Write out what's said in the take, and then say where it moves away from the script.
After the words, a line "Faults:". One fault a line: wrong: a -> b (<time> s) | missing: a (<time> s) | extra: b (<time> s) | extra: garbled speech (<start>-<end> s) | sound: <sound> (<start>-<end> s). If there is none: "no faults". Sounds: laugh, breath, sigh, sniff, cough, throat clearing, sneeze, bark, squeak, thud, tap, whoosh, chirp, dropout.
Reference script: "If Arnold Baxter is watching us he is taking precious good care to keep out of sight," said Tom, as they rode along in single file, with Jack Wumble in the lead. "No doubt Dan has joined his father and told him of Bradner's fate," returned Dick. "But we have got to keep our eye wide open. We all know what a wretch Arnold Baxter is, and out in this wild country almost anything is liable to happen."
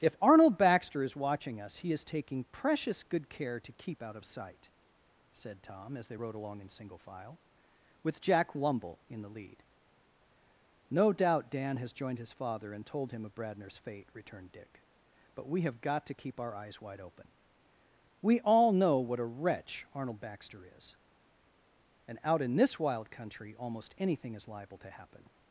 "If Arnold Baxter is watching us he is taking precious good care to keep out of sight," said Tom, as they rode along in single file, with Jack Wumble in the lead. "No doubt Dan has joined his father and told him of Bradner's fate," returned Dick. "But we have got to keep our eyes wide open. We all know what a wretch Arnold Baxter is, and out in this wild country almost anything is liable to happen."
Faults:
wrong: eye -> eyes (16.5 s)